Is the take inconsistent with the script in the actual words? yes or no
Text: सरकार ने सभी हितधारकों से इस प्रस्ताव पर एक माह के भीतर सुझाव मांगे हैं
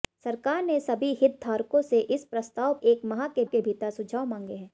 yes